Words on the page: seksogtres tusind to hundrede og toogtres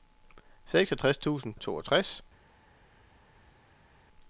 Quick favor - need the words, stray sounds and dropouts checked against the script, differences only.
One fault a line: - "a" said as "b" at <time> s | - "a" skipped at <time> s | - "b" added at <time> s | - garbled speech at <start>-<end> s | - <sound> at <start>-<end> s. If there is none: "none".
- "to hundrede" skipped at 1.5 s